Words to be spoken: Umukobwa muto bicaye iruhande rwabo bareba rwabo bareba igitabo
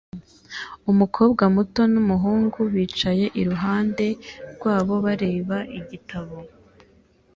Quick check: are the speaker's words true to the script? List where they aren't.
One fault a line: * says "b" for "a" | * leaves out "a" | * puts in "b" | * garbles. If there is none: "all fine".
* puts in "n'umuhungu"
* leaves out "rwabo bareba"